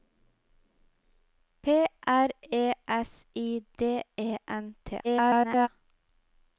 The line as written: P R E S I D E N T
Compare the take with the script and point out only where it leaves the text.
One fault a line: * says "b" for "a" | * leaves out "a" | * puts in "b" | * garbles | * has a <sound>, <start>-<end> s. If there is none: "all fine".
* garbles